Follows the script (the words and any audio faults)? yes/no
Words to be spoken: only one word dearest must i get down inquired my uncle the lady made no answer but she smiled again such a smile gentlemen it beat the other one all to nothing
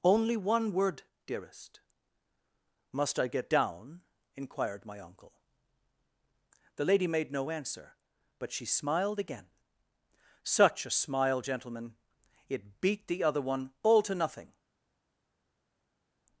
yes